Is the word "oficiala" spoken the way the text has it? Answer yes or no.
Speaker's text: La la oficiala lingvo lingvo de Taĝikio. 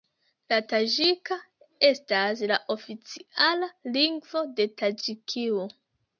yes